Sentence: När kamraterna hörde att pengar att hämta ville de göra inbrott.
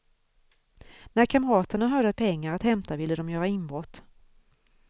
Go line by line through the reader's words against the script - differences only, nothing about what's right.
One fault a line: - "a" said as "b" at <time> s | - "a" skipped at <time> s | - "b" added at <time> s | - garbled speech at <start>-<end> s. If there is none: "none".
none